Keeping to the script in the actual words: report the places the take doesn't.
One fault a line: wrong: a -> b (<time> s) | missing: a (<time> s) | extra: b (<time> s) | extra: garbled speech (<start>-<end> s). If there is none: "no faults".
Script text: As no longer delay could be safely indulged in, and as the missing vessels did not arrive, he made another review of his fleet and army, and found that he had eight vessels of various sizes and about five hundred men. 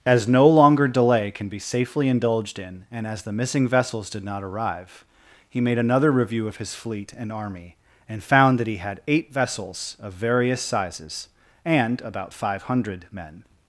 wrong: could -> can (1.3 s)